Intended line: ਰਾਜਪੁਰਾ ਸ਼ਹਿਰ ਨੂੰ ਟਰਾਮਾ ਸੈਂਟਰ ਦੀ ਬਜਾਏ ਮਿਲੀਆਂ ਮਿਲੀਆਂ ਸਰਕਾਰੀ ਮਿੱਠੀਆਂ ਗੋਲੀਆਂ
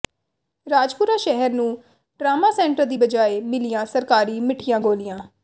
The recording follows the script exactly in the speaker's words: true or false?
false